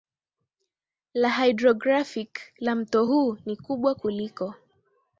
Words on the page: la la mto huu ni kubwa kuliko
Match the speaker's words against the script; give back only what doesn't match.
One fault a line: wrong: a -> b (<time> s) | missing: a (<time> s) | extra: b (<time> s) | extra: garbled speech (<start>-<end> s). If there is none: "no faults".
extra: hydrographic (1.3 s)